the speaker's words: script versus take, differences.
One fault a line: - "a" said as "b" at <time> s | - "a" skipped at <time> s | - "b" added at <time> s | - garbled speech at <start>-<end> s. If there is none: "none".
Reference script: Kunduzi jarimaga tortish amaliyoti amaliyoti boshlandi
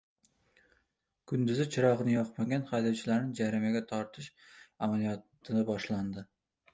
- "chirog‘ini yoqmagan haydovchilarni" added at 1.8 s
- "amaliyoti" skipped at 5.7 s